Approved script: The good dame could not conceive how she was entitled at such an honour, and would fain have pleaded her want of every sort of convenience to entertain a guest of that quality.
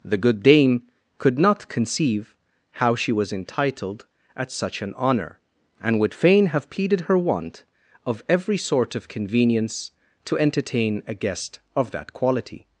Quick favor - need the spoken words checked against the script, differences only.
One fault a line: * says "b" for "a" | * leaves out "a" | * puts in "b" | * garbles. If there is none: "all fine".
all fine